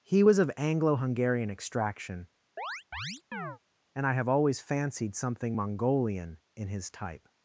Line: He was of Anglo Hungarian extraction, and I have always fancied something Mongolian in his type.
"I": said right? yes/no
yes